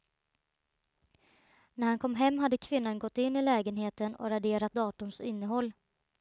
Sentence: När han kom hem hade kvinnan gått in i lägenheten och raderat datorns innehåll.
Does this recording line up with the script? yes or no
yes